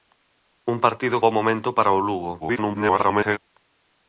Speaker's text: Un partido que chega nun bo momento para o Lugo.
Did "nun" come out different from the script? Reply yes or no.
yes